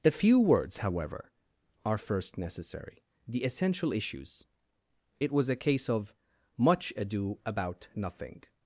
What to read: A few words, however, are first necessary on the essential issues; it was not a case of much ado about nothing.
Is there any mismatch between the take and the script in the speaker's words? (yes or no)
yes